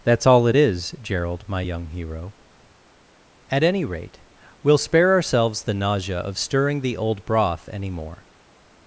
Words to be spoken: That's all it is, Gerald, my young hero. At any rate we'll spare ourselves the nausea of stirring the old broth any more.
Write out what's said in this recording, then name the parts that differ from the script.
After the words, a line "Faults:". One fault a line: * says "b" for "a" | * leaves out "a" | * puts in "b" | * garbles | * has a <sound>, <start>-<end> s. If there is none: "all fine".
That's all it is, Gerald, my young hero. At any rate we'll spare ourselves the nausea of stirring the old broth any more.
Faults:
all fine